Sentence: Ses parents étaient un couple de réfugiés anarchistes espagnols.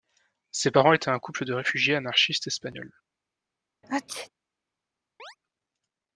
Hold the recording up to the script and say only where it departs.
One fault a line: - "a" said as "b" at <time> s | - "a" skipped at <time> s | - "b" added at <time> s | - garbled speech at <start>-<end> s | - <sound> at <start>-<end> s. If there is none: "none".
- sneeze at 3.8-4.3 s
- chirp at 5.2-5.4 s